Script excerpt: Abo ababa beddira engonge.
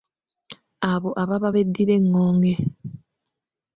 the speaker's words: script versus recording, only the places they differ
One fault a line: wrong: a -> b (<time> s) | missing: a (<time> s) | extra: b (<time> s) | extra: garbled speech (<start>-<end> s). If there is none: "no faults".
no faults